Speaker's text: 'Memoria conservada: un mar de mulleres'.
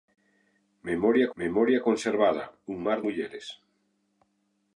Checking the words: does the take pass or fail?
fail